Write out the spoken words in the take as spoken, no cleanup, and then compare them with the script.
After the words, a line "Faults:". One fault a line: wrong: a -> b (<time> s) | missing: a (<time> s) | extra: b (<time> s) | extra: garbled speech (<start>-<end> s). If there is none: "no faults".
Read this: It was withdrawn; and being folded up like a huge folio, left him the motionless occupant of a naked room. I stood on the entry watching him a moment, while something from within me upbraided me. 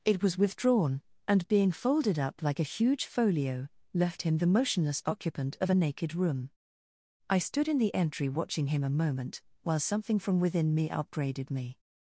It was withdrawn; and being folded up like a huge folio, left him the motionless occupant of a naked room. I stood in the entry watching him a moment, while something from within me upbraided me.
Faults:
wrong: on -> in (7.7 s)